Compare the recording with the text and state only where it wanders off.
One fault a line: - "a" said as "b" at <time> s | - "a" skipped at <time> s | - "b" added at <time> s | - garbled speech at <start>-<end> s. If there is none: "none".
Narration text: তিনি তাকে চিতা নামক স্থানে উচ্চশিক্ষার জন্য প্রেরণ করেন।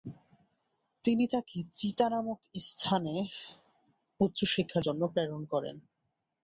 none